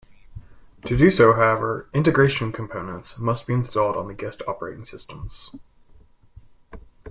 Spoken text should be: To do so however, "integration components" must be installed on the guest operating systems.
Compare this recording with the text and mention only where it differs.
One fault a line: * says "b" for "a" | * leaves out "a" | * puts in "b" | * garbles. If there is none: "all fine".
all fine